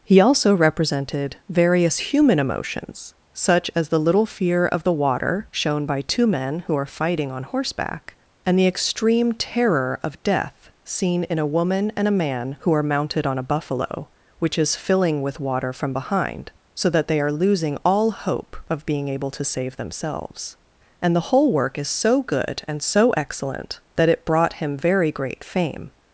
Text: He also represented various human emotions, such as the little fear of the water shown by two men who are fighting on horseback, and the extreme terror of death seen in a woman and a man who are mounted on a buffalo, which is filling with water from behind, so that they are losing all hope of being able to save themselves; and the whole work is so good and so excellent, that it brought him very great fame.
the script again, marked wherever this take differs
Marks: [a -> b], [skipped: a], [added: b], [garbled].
He also represented various human emotions, such as the little fear of the water shown by two men who are fighting on horseback, and the extreme terror of death seen in a woman and a man who are mounted on a buffalo, which is filling with water from behind, so that they are losing all hope of being able to save themselves; and the whole work is so good and so excellent, that it brought him very great fame.